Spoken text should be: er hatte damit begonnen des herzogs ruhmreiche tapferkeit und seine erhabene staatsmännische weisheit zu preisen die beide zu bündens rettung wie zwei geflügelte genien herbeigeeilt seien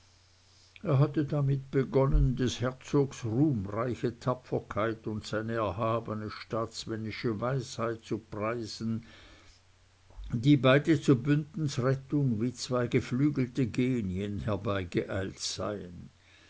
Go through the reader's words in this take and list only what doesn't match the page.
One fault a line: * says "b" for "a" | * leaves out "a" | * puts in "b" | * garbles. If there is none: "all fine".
all fine